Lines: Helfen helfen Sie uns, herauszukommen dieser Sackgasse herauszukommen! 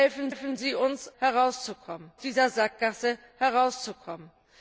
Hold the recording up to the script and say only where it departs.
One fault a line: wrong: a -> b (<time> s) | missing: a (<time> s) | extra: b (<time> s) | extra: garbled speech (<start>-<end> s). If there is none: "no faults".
no faults